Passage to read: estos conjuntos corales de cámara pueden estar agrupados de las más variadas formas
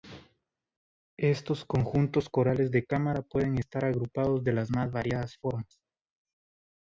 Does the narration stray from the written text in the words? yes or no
no